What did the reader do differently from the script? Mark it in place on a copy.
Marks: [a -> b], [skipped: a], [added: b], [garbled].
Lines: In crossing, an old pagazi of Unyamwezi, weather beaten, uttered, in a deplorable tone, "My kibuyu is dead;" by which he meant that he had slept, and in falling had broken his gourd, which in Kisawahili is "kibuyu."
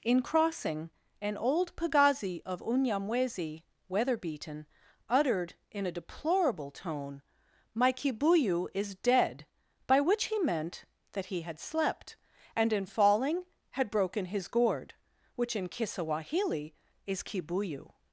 In crossing, an old pagazi of Unyamwezi, weather beaten, uttered, in a deplorable tone, "My kibuyu is dead;" by which he meant that he had slept, and in falling had broken his gourd, which in Kisawahili is "kibuyu."